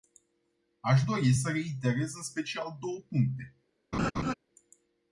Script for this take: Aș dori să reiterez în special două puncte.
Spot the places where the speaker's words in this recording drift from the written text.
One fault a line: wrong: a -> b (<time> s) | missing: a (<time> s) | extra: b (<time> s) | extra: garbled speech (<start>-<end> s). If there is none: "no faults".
no faults